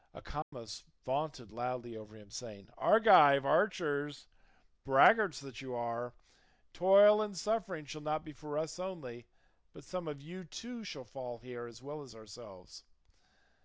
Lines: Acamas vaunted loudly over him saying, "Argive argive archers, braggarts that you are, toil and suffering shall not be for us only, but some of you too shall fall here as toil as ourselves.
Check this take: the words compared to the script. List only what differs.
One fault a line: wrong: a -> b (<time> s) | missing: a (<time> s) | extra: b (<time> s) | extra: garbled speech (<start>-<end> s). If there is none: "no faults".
missing: argive (3.4 s)
wrong: toil -> well (11.8 s)